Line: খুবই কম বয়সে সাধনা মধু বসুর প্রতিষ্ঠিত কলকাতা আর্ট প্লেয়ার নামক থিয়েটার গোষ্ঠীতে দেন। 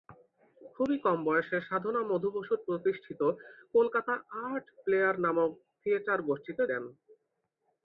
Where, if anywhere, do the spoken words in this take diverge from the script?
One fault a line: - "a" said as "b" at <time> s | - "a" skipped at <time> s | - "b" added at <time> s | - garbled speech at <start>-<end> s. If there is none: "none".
none